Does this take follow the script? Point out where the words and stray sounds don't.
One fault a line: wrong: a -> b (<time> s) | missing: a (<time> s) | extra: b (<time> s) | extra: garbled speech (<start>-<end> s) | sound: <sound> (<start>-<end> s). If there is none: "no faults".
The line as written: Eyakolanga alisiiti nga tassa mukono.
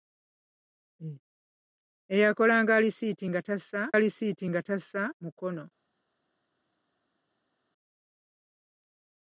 extra: alisiiti nga tassa (4.0 s)